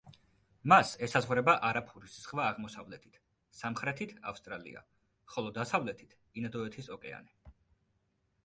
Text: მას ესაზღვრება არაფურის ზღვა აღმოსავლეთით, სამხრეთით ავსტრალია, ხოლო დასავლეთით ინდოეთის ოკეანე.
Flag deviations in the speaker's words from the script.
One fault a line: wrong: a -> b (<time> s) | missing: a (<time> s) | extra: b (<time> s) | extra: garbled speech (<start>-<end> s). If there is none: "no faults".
no faults